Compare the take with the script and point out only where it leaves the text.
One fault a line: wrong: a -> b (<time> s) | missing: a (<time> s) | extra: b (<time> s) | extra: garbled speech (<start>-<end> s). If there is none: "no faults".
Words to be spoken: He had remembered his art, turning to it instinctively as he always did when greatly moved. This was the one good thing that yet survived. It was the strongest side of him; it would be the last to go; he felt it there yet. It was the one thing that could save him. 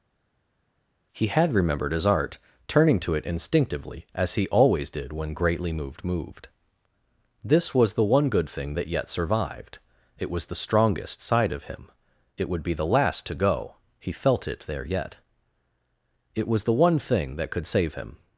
extra: moved (6.0 s)